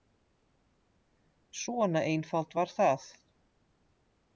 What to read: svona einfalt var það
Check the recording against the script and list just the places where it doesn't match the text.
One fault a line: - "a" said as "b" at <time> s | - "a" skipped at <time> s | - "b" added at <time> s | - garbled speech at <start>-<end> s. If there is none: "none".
none